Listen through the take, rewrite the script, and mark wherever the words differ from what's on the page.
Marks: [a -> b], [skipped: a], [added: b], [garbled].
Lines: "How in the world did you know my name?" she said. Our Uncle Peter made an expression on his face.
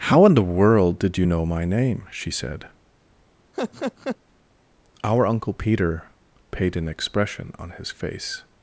"How in the world did you know my name?" she said. Our Uncle Peter [made -> paid] an expression on his face.